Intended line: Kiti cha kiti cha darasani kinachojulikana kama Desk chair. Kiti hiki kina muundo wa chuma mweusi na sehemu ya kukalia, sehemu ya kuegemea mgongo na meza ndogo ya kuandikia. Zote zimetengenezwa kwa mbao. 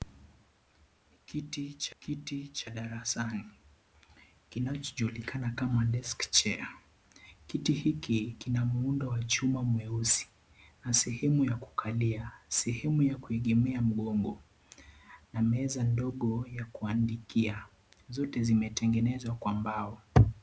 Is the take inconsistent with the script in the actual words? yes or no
no